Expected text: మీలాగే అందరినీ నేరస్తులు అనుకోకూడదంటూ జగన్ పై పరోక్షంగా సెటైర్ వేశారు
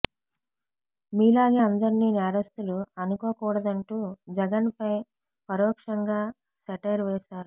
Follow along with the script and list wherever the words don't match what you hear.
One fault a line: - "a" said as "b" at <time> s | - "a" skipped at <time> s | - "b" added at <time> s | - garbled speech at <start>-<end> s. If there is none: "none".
none